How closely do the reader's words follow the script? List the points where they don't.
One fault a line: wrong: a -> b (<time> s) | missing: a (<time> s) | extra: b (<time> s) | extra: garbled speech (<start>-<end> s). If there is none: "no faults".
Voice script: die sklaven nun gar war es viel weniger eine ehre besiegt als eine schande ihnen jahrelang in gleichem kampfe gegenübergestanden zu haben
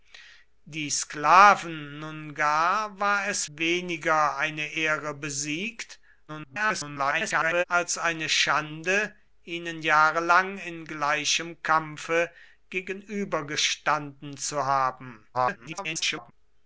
missing: viel (3.5 s)
extra: garbled speech (6.3-7.6 s)
extra: garbled speech (15.3-16.3 s)